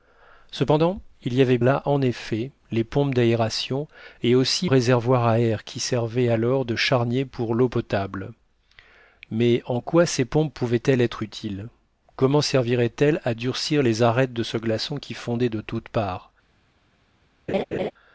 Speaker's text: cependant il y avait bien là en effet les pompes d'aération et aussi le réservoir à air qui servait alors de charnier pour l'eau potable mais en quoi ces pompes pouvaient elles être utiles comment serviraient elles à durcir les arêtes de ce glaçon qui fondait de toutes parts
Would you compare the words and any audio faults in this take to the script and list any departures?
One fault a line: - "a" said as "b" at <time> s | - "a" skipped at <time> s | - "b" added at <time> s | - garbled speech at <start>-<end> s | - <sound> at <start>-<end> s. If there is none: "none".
- "bien" skipped at 1.6 s
- "le" skipped at 4.7 s
- laugh at 17.5-17.9 s